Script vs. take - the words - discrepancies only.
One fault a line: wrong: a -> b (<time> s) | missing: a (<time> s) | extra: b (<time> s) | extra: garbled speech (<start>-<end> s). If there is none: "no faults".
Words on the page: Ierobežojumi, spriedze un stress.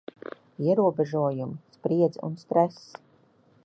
no faults